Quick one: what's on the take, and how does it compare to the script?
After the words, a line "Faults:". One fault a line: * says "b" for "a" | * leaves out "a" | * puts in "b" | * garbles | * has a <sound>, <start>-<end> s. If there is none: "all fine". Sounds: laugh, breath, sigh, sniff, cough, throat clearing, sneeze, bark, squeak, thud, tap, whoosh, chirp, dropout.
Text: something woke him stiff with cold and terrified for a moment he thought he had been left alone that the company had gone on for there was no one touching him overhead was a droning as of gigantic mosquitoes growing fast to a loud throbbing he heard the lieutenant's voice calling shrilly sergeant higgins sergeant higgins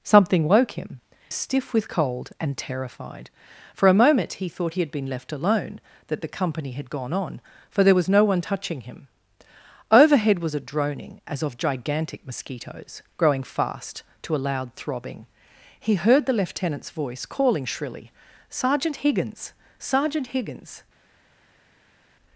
something woke him stiff with cold and terrified for a moment he thought he had been left alone that the company had gone on for there was no one touching him overhead was a droning as of gigantic mosquitoes growing fast to a loud throbbing he heard the lieutenant's voice calling shrilly sergeant higgins sergeant higgins
Faults:
all fine